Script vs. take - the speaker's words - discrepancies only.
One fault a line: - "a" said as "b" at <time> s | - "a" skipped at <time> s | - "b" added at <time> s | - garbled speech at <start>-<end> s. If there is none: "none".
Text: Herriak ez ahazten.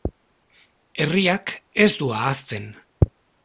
- "du" added at 2.0 s